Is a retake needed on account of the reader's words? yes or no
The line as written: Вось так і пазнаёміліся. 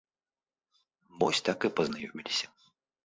no